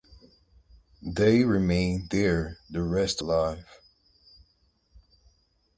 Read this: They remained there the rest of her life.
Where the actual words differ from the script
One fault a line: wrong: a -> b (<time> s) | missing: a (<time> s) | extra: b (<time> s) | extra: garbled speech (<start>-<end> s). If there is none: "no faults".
missing: of her (3.2 s)